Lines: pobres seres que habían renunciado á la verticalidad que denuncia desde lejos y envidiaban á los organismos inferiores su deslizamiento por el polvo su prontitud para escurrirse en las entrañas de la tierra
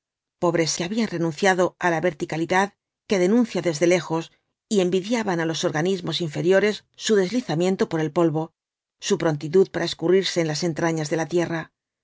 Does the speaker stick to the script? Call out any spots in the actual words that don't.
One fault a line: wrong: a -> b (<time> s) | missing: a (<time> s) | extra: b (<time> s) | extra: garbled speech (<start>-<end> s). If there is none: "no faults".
missing: seres (0.7 s)